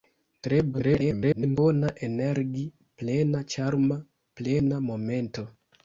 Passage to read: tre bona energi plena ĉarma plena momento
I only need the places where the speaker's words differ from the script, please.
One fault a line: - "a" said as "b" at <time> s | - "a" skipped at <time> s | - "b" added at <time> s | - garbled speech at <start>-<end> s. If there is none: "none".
- garbled speech at 0.7-1.6 s